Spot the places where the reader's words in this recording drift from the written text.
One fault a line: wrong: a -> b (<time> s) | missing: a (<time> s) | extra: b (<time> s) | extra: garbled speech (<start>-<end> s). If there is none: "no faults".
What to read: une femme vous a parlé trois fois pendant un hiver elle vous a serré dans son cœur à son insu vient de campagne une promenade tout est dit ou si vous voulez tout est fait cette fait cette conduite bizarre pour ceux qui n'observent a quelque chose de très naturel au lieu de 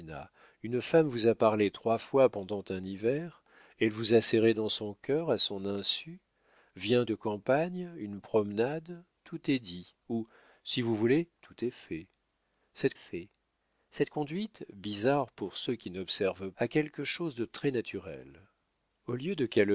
no faults